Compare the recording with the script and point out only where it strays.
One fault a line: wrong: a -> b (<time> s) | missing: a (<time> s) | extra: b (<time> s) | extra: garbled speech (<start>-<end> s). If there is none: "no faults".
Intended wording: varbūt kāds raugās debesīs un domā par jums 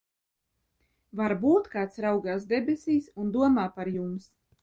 no faults